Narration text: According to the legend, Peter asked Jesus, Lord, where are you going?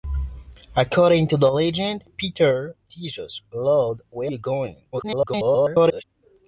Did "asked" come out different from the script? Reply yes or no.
yes